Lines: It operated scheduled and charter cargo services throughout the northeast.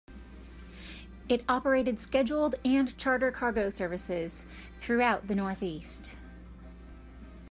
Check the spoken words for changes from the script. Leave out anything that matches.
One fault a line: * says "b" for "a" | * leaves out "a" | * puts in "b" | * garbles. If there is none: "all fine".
all fine